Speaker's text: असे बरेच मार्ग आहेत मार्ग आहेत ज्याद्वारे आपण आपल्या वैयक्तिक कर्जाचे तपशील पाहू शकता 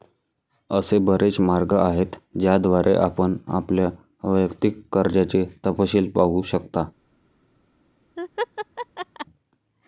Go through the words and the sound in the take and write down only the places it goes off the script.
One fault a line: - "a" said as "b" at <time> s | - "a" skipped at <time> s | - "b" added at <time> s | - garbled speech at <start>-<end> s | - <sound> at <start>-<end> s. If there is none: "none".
- "मार्ग आहेत" skipped at 2.1 s
- laugh at 8.2-9.3 s